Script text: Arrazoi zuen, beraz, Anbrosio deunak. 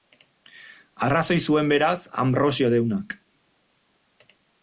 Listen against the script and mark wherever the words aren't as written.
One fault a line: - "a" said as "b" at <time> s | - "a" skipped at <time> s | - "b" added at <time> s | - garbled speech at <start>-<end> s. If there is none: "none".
none